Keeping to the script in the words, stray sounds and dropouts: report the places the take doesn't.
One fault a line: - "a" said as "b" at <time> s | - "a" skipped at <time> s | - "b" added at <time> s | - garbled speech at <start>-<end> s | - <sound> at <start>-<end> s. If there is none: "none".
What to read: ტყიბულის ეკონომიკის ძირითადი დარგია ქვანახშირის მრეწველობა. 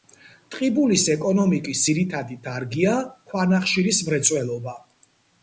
none